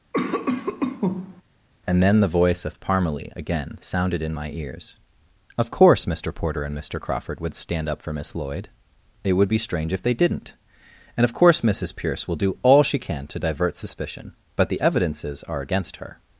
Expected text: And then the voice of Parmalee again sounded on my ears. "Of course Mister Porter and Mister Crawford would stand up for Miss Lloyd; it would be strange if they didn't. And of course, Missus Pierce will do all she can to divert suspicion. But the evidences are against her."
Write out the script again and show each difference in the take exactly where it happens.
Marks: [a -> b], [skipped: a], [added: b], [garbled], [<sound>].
[cough] And then the voice of Parmalee again sounded [on -> in] my ears. "Of course Mister Porter and Mister Crawford would stand up for Miss Lloyd; it would be strange if they didn't. And of course, Missus Pierce will do all she can to divert suspicion. But the evidences are against her."